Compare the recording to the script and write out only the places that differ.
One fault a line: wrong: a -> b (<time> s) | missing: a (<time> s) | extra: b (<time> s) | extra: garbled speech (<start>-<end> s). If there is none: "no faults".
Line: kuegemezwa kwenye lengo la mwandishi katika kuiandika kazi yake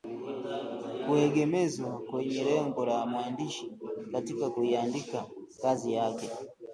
no faults